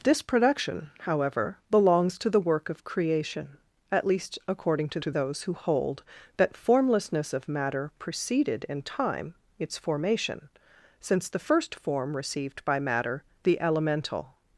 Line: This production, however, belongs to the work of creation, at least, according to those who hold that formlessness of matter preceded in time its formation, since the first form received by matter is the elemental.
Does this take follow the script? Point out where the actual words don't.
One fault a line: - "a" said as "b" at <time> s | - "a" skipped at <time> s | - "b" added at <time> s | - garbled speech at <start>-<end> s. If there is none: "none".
- "to" added at 5.0 s
- "is" skipped at 13.2 s